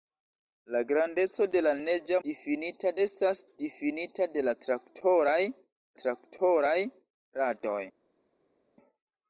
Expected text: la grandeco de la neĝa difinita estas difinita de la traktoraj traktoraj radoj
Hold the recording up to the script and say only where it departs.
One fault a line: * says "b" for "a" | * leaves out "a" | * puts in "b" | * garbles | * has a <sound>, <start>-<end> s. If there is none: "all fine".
all fine